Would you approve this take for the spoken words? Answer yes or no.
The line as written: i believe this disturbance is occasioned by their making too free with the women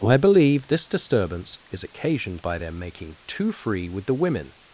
yes